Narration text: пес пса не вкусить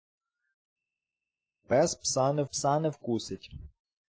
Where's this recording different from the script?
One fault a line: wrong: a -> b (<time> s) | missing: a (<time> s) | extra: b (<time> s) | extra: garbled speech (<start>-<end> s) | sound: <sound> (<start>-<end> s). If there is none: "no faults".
extra: пса не (2.4 s)